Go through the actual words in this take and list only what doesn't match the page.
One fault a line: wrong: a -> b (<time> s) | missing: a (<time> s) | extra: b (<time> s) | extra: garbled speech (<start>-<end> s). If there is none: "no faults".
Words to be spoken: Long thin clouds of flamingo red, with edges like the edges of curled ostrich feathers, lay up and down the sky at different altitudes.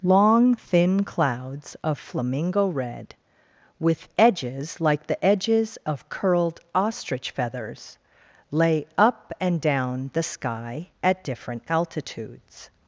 no faults